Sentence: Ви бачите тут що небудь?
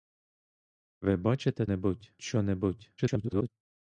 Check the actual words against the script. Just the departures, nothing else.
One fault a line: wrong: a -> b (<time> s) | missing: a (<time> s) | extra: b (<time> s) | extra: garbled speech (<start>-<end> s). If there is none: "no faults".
wrong: тут -> небудь (1.6 s)
extra: garbled speech (3.0-3.5 s)